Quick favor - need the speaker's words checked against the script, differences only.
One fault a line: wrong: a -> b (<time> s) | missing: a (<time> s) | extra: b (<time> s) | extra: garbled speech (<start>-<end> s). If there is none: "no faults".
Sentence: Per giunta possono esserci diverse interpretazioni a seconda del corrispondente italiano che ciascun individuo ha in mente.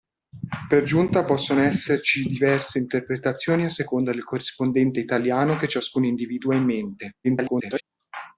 extra: garbled speech (7.2-7.8 s)